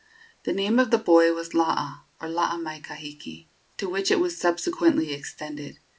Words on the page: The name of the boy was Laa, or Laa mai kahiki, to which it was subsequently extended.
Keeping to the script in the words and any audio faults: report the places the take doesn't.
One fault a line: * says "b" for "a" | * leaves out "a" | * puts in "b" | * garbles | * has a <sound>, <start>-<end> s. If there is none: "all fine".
all fine